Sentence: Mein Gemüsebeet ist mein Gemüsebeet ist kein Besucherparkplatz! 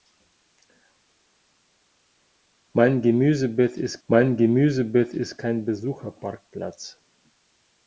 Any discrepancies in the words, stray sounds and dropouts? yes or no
no